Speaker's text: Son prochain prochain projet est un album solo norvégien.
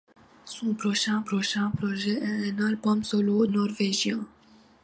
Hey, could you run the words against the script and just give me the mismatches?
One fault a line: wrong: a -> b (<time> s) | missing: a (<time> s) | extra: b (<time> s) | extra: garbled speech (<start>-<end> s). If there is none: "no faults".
no faults